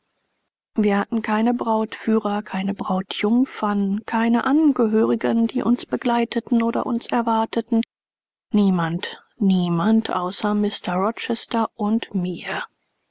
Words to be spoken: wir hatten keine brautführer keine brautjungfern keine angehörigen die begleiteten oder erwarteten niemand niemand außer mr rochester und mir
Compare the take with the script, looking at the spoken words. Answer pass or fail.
fail